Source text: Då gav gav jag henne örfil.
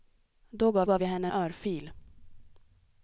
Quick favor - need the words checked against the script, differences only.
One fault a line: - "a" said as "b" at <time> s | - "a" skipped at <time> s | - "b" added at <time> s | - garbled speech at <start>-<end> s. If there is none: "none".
none